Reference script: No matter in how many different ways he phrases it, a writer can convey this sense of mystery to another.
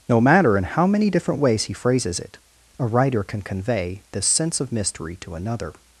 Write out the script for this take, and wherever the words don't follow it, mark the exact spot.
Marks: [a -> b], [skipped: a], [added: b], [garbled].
No matter in how many different ways he phrases it, a writer can convey this sense of mystery to another.